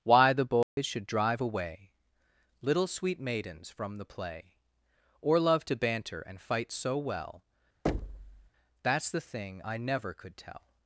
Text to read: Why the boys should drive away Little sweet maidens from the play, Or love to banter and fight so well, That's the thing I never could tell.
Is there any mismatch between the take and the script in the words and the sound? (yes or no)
yes